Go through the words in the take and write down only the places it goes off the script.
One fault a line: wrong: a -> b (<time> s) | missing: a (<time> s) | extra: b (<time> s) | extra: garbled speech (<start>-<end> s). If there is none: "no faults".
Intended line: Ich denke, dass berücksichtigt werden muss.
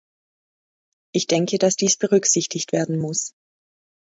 extra: dies (1.8 s)